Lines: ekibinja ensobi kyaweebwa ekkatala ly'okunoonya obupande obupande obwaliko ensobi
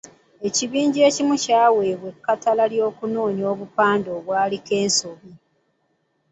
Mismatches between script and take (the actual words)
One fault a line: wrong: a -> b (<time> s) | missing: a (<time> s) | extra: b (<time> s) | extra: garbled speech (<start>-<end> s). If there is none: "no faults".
wrong: ensobi -> ekimu (1.1 s)
missing: obupande (4.1 s)